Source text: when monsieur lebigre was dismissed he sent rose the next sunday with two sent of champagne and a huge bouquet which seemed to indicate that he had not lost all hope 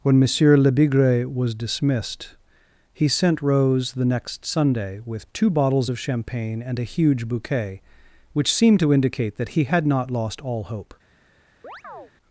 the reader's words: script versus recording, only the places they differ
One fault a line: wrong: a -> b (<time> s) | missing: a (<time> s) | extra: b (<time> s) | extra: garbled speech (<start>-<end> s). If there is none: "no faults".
wrong: sent -> bottles (5.5 s)